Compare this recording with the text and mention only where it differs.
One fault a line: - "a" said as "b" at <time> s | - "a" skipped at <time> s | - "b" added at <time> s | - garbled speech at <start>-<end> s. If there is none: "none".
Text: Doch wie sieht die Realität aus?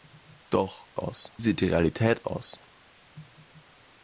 - "wie" said as "aus" at 1.0 s